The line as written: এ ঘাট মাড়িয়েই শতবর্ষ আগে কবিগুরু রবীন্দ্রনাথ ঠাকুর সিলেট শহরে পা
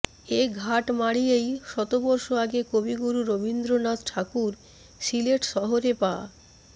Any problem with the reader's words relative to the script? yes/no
no